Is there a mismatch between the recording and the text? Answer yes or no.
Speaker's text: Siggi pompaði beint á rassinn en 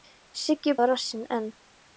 yes